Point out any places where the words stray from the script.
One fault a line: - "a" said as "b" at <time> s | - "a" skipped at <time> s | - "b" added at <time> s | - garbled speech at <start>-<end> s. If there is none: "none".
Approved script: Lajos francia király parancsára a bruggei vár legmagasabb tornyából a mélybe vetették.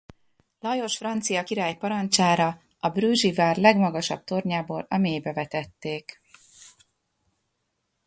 none